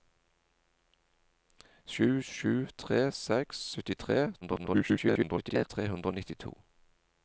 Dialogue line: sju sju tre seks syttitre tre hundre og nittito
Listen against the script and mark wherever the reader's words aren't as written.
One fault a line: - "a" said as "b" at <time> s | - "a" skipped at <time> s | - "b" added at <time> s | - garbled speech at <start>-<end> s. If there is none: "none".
- garbled speech at 4.4-5.7 s